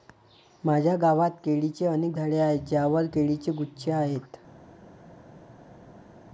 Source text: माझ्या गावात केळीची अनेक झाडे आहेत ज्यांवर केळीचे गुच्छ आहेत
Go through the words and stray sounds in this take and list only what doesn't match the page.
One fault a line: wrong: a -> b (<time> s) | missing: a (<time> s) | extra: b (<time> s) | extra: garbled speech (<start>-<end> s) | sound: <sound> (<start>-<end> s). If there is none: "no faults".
no faults